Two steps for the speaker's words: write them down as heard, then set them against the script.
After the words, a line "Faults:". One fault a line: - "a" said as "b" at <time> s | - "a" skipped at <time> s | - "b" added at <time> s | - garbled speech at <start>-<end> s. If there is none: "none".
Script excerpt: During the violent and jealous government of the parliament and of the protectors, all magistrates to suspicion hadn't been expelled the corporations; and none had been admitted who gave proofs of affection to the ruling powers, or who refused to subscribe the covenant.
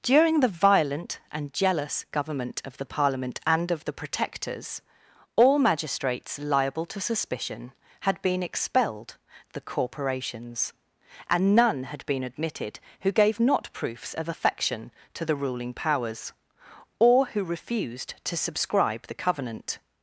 During the violent and jealous government of the parliament and of the protectors, all magistrates liable to suspicion had been expelled the corporations; and none had been admitted who gave not proofs of affection to the ruling powers, or who refused to subscribe the covenant.
Faults:
- "liable" added at 6.4 s
- "hadn't" said as "had" at 8.0 s
- "not" added at 13.4 s